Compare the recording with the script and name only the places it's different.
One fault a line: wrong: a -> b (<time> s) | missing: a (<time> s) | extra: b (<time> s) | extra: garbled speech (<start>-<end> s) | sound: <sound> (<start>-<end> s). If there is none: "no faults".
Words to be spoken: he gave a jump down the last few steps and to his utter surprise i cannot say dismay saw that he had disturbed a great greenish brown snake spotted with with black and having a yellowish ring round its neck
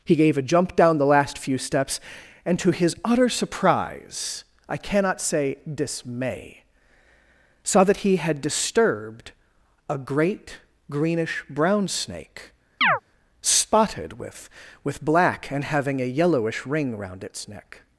sound: chirp (12.8-13.0 s)